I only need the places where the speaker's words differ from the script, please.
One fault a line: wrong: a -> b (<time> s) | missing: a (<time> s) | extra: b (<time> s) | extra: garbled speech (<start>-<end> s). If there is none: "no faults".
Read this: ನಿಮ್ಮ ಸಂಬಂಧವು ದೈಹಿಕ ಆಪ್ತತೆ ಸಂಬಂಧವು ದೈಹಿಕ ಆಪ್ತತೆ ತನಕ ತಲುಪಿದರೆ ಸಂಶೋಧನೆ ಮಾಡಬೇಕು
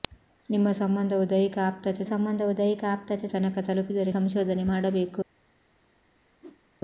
no faults